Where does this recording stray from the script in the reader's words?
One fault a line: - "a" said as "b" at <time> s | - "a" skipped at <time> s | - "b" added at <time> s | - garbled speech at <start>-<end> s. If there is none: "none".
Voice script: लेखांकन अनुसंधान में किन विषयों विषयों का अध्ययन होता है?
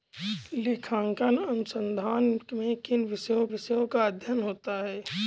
none